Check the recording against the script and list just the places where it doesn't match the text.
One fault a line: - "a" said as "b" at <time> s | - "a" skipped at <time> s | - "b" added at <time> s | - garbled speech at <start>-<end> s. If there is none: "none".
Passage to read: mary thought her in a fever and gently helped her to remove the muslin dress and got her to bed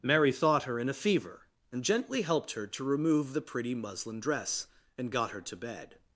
- "pretty" added at 3.4 s